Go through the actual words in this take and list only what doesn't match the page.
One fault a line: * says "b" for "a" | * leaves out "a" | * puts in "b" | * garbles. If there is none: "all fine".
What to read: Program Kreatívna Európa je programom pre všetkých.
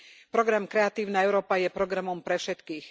all fine